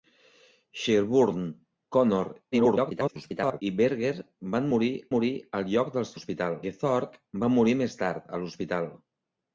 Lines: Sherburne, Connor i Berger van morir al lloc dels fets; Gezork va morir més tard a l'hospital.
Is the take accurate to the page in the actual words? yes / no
no